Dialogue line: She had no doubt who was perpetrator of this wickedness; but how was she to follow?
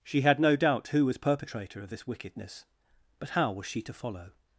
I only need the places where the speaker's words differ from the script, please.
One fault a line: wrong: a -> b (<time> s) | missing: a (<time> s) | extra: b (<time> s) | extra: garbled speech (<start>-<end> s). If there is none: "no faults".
no faults